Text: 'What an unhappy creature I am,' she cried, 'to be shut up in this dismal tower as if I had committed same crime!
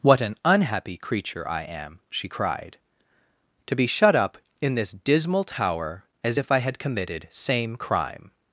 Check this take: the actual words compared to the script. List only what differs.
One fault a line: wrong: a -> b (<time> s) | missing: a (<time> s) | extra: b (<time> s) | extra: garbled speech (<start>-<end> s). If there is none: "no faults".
no faults